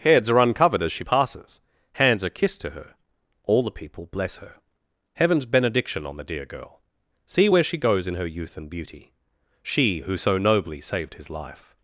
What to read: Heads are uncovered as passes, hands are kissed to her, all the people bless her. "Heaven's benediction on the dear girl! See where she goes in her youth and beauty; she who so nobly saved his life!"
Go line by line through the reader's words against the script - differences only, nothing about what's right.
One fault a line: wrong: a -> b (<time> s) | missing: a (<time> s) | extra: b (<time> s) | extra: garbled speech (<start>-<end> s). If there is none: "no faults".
extra: she (0.9 s)